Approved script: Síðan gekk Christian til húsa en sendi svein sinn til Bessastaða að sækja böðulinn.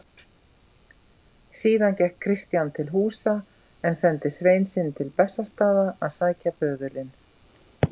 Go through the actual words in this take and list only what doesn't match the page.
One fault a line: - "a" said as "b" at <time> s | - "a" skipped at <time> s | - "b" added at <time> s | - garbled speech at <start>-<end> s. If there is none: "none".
none